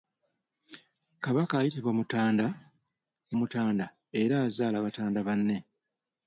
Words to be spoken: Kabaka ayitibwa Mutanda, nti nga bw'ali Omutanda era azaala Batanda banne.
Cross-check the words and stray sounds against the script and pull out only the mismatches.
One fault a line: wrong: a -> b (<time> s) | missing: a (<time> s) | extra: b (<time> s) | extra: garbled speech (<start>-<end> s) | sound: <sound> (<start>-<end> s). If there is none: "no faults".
missing: nti nga bw'ali (2.5 s)